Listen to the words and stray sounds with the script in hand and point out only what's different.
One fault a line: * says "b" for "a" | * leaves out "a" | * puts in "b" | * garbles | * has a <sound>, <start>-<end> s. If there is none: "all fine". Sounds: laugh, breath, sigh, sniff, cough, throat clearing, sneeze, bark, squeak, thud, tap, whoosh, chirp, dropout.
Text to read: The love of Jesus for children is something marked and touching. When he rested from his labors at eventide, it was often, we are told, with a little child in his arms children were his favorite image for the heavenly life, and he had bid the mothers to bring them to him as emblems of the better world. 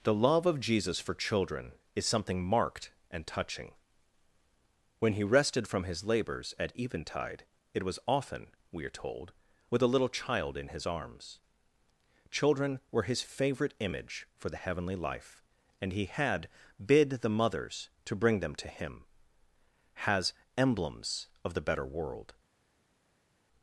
* says "has" for "as"